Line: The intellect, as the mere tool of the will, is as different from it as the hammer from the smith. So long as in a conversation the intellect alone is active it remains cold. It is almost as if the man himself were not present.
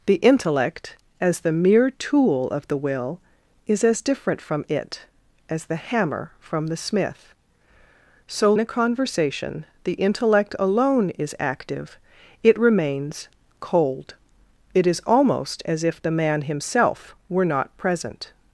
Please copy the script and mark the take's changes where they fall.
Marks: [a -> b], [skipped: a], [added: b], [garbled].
The intellect, as the mere tool of the will, is as different from it as the hammer from the smith. So [skipped: long as in] a conversation the intellect alone is active it remains cold. It is almost as if the man himself were not present.